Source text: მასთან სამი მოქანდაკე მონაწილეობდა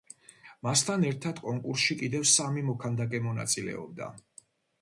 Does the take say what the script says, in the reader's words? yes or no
no